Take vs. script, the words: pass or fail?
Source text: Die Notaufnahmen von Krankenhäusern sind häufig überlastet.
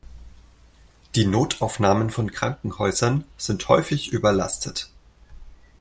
pass